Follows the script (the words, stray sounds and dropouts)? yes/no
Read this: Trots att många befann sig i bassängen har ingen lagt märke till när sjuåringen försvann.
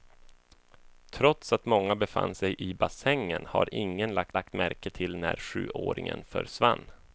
no